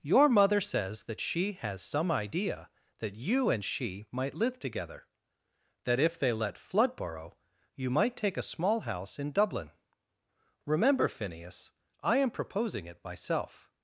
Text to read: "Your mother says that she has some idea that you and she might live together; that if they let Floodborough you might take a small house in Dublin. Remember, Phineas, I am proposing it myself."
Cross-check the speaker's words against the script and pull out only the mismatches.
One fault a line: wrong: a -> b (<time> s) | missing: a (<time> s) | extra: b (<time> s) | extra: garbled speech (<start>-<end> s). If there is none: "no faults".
no faults